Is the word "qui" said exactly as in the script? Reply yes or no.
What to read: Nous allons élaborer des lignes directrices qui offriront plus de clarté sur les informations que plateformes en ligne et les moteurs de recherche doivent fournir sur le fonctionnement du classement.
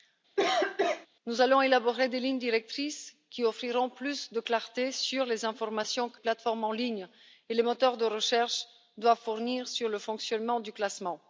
yes